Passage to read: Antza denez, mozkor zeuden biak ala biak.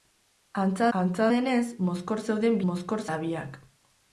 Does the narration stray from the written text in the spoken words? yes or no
yes